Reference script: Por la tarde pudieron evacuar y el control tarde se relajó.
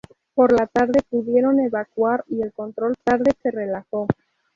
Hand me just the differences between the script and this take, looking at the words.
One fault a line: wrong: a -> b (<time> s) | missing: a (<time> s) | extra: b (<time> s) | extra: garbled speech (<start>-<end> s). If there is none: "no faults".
no faults